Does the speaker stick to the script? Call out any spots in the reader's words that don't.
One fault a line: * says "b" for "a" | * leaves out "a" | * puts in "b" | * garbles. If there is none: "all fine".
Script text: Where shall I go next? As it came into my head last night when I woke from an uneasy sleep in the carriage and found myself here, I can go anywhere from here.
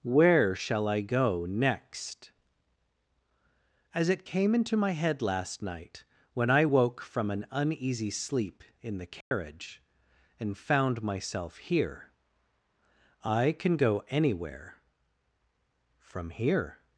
all fine